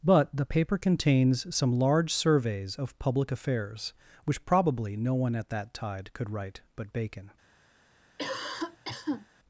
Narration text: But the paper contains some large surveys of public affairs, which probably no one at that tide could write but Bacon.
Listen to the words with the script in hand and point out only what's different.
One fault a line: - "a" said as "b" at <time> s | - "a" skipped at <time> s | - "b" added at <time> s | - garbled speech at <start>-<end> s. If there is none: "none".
none